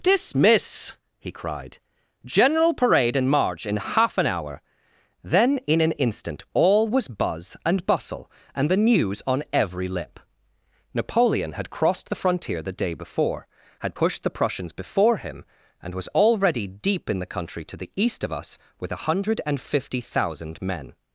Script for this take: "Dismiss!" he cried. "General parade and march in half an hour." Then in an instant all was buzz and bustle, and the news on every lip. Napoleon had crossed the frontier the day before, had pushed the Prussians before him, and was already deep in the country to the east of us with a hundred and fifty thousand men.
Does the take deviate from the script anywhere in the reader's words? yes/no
no